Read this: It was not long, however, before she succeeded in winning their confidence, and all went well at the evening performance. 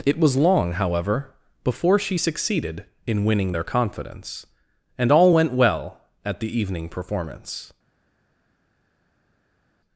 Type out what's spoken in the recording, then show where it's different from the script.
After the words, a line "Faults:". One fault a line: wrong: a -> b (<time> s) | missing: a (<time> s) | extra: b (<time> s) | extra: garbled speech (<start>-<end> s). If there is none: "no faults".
It was long, however, before she succeeded in winning their confidence, and all went well at the evening performance.
Faults:
missing: not (0.4 s)